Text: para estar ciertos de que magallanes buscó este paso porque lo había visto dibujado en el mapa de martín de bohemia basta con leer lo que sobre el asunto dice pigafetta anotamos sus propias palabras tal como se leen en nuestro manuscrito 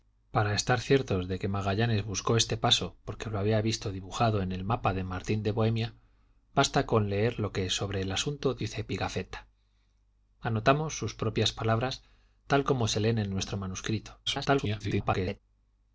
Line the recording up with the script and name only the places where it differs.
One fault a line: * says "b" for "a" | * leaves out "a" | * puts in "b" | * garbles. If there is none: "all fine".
* garbles